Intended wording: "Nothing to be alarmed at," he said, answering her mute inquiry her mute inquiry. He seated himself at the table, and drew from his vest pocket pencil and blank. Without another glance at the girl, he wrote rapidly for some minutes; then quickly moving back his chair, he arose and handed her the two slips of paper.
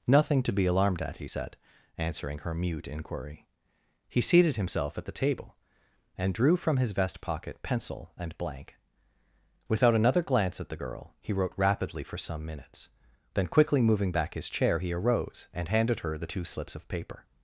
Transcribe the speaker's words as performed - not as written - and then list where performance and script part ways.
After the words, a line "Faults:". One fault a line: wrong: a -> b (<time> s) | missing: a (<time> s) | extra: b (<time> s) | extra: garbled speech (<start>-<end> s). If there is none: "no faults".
"Nothing to be alarmed at," he said, answering her mute inquiry. He seated himself at the table, and drew from his vest pocket pencil and blank. Without another glance at the girl, he wrote rapidly for some minutes; then quickly moving back his chair, he arose and handed her the two slips of paper.
Faults:
missing: her mute inquiry (3.5 s)